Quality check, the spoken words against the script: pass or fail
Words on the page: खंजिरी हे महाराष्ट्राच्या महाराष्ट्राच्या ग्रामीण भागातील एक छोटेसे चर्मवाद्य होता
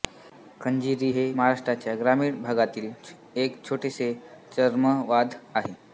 fail